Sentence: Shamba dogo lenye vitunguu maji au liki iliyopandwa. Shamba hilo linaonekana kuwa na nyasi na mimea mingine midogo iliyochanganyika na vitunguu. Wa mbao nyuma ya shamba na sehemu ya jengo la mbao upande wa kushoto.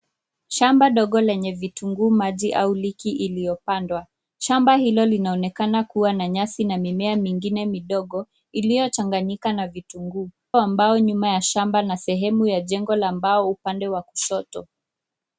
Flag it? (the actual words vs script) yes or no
no